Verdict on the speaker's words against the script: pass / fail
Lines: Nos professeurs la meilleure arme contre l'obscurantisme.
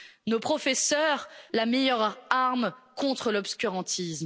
pass